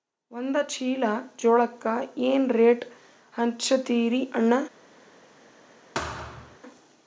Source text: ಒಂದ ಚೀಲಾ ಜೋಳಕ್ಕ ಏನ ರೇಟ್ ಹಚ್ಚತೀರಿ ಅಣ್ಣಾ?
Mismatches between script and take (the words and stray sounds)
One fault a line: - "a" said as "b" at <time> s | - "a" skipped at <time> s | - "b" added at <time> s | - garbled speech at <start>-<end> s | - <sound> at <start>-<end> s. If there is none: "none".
- thud at 5.9-6.6 s